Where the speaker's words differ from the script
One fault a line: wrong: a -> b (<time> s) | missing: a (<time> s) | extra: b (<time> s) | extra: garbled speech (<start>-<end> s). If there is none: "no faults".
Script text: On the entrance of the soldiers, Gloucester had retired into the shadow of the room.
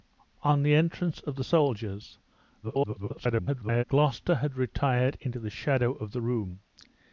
extra: garbled speech (2.6-3.8 s)